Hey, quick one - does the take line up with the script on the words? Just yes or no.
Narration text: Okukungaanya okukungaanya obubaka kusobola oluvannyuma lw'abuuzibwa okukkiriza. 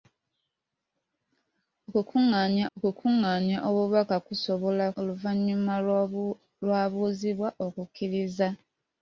yes